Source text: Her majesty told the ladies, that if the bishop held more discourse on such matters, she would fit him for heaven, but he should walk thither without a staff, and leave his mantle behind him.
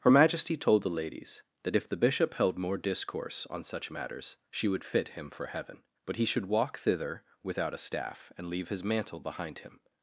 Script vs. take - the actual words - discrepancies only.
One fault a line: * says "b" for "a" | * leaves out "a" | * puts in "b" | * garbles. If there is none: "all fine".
all fine